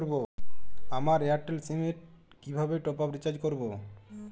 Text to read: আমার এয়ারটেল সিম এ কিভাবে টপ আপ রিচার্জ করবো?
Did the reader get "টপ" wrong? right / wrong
right